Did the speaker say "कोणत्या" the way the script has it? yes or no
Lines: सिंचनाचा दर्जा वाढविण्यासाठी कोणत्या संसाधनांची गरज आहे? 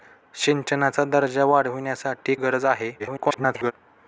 no